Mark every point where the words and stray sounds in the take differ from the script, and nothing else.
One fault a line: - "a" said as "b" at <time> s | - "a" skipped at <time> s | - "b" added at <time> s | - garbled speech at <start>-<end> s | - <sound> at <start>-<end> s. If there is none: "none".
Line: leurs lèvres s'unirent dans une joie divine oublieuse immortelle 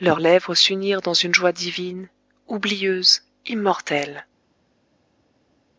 none